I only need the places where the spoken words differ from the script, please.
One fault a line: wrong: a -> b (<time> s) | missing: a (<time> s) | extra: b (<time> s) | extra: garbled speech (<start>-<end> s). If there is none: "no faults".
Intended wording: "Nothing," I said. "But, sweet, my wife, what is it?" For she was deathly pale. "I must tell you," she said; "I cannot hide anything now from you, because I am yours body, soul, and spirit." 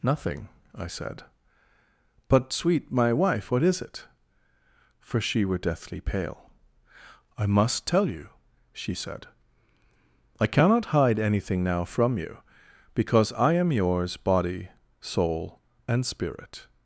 wrong: was -> were (5.5 s)